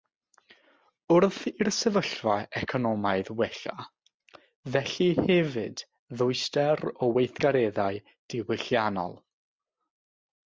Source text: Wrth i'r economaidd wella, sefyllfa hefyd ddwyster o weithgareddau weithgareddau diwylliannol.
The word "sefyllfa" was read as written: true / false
false